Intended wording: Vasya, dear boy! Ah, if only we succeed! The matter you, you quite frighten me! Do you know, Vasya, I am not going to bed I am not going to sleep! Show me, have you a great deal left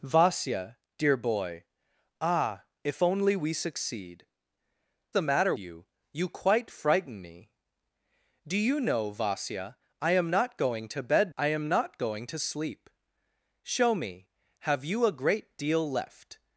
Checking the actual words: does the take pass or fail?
pass